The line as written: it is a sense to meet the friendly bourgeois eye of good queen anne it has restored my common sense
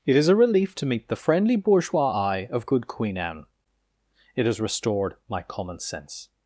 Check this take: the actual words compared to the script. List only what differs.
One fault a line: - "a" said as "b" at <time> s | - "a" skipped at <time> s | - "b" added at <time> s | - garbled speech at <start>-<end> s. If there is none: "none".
- "sense" said as "relief" at 0.3 s